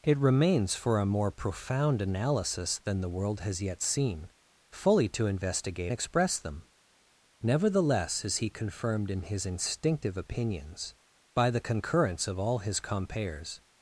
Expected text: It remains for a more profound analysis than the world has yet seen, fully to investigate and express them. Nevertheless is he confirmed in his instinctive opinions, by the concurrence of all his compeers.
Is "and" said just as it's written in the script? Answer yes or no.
no